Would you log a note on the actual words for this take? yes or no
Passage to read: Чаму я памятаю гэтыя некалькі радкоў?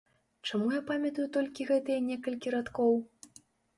yes